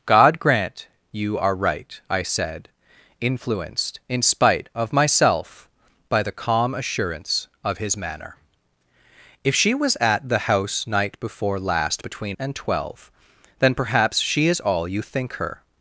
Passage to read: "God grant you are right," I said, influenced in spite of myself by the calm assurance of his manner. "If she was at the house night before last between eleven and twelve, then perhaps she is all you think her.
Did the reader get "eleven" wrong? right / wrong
wrong